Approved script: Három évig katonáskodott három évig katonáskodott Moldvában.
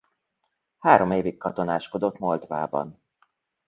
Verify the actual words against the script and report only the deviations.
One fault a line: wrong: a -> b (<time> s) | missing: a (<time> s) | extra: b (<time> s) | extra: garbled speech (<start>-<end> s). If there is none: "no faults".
missing: három évig katonáskodott (2.2 s)